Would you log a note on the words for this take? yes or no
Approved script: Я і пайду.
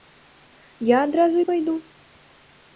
yes